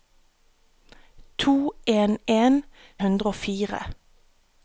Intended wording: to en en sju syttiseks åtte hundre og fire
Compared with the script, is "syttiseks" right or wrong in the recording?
wrong